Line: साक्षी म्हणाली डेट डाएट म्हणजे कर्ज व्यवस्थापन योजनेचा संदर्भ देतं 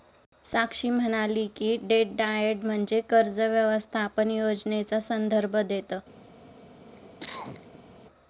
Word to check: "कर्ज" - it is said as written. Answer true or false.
true